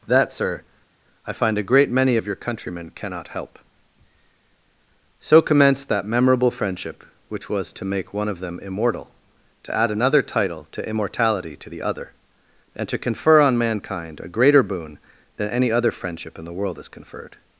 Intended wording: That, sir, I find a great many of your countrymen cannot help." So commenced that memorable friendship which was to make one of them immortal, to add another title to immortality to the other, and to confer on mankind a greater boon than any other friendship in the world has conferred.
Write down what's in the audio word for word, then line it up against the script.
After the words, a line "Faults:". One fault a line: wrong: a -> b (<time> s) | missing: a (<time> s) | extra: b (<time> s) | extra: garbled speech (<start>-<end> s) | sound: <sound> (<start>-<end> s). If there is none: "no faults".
That, sir, I find a great many of your countrymen cannot help." So commenced that memorable friendship which was to make one of them immortal, to add another title to immortality to the other, and to confer on mankind a greater boon than any other friendship in the world has conferred.
Faults:
no faults